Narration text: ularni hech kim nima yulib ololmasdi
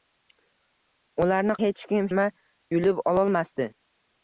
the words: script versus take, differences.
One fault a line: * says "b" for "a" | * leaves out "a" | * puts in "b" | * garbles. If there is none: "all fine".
all fine